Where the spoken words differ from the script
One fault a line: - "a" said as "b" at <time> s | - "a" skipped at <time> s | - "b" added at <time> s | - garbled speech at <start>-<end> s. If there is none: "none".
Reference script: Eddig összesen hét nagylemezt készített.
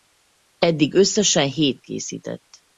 - "nagylemezt" skipped at 1.8 s